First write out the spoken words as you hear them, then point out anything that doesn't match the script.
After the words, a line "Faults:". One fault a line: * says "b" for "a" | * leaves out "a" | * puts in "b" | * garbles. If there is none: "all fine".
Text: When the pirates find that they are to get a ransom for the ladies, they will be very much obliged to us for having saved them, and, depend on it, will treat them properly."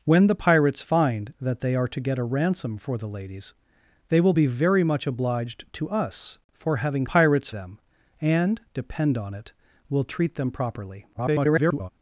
When the pirates find that they are to get a ransom for the ladies, they will be very much obliged to us for having pirates them, and, depend on it, will treat them properly." [garbled]
Faults:
* says "pirates" for "saved"
* garbles